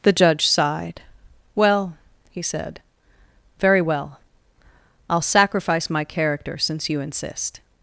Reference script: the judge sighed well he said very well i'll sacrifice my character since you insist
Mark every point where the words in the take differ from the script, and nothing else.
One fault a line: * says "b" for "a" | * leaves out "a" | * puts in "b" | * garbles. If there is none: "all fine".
all fine